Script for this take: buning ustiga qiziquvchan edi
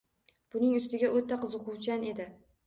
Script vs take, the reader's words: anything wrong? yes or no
yes